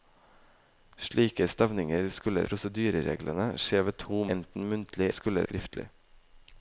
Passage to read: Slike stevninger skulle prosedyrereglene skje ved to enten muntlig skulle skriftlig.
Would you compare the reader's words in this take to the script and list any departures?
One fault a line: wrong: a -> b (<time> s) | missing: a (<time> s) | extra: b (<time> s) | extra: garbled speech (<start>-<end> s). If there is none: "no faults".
no faults